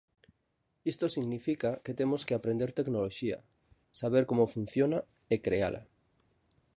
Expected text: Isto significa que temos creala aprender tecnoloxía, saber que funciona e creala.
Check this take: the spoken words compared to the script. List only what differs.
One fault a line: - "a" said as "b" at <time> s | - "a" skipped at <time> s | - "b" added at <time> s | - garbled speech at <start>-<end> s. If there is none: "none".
- "creala" said as "que" at 2.2 s
- "que" said as "como" at 4.3 s